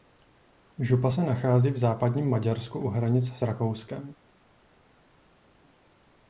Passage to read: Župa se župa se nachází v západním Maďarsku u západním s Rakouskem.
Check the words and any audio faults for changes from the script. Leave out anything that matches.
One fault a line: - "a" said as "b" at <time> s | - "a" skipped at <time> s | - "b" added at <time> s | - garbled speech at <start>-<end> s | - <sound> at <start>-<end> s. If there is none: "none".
- "župa se" skipped at 1.2 s
- "západním" said as "hranic" at 2.9 s